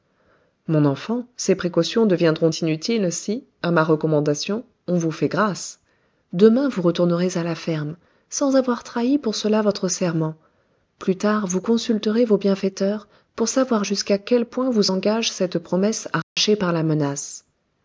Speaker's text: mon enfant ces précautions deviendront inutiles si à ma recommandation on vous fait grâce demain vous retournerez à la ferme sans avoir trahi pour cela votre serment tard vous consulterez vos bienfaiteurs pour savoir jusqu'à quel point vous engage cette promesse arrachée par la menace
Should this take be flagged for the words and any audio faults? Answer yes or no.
yes